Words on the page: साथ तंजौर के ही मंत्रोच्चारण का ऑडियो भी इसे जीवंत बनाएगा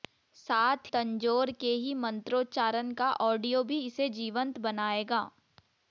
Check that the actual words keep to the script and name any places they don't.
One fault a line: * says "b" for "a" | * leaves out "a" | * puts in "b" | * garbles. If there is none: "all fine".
all fine